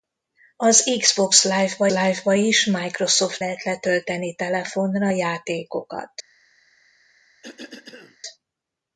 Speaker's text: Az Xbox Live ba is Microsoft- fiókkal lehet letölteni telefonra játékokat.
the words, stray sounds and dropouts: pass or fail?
fail